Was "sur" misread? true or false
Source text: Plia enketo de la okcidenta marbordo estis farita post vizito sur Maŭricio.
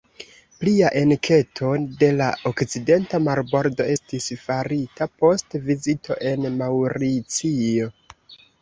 true